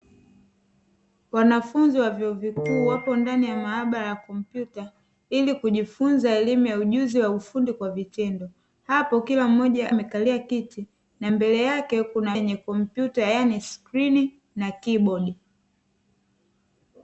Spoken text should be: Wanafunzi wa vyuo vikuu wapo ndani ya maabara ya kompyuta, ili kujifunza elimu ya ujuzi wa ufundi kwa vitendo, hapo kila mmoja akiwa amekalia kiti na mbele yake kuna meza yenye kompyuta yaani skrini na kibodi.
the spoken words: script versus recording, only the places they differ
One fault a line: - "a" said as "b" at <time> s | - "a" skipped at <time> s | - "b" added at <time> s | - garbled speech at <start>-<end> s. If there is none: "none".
- "akiwa" skipped at 9.9 s
- "meza" skipped at 12.4 s